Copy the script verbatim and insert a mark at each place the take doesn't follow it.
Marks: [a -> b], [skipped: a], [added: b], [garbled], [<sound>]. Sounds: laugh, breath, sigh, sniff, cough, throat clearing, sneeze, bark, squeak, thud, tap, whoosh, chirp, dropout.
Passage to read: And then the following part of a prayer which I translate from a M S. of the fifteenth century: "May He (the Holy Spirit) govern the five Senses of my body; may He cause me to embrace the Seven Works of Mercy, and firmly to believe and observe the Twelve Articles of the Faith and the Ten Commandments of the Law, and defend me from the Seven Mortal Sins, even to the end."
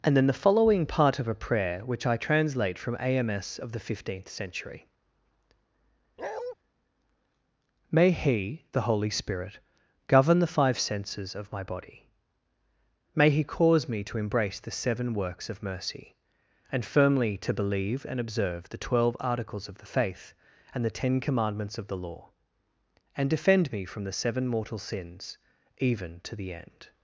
And then the following part of a prayer which I translate from a M S. of the fifteenth century: [bark] "May He (the Holy Spirit) govern the five Senses of my body; may He cause me to embrace the Seven Works of Mercy, and firmly to believe and observe the Twelve Articles of the Faith and the Ten Commandments of the Law, and defend me from the Seven Mortal Sins, even to the end."